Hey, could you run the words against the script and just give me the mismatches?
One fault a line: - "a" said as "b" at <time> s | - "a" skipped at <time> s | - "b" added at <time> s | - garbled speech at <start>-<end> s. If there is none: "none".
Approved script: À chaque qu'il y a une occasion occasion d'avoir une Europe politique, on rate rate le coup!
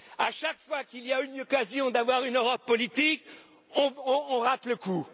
- "fois" added at 0.6 s
- "occasion" skipped at 1.9 s
- "rate" skipped at 4.7 s